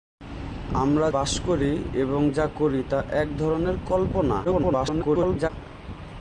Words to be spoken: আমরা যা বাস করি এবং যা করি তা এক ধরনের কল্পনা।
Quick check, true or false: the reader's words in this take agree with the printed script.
false